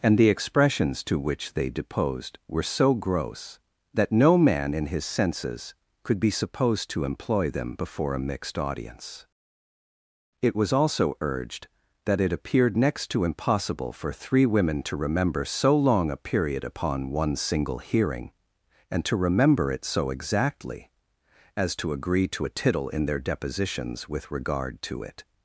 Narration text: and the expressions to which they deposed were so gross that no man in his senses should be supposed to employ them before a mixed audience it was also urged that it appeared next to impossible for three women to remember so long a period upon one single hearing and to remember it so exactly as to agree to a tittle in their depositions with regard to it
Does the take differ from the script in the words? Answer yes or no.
yes